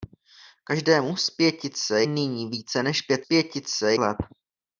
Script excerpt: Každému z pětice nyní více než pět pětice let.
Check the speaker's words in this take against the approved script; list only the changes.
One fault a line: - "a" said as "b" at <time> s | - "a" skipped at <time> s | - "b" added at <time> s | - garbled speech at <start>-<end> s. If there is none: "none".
none